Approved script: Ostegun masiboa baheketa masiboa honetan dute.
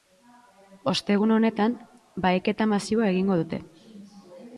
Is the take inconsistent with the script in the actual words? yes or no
yes